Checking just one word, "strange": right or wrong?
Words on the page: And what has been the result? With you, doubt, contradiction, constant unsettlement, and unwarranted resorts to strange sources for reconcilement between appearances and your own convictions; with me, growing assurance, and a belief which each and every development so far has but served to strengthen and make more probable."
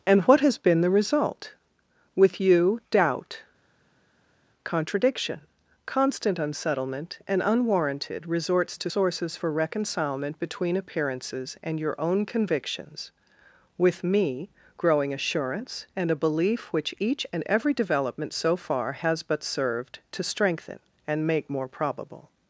wrong